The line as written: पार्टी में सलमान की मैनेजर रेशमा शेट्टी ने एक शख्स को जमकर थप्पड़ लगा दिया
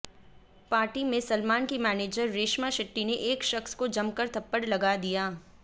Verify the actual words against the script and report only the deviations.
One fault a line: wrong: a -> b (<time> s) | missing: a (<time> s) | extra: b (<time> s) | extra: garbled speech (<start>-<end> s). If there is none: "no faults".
no faults